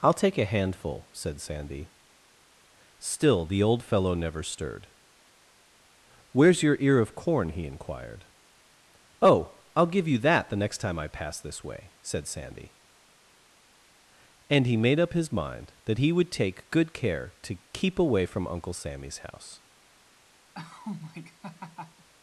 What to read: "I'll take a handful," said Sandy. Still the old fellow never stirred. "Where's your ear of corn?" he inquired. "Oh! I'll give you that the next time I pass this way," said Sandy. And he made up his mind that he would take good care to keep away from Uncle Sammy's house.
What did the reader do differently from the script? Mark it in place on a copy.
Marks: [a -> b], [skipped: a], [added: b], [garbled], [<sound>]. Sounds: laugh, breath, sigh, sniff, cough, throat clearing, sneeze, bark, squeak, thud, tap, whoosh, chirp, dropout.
"I'll take a handful," said Sandy. Still the old fellow never stirred. "Where's your ear of corn?" he inquired. "Oh! I'll give you that the next time I pass this way," said Sandy. And he made up his mind that he would take good care to keep away from Uncle Sammy's house. [laugh]